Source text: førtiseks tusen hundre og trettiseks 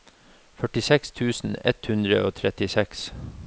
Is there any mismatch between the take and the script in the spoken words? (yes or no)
yes